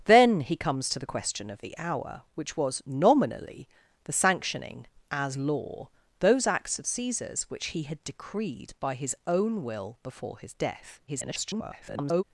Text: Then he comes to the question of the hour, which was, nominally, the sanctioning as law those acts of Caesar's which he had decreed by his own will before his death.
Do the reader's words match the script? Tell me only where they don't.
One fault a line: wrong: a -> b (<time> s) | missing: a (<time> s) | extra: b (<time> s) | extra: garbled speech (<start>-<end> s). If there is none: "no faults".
extra: garbled speech (11.1-12.2 s)